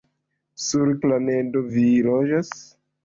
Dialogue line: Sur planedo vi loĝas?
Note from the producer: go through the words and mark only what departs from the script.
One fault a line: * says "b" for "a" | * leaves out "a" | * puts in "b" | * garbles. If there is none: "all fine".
all fine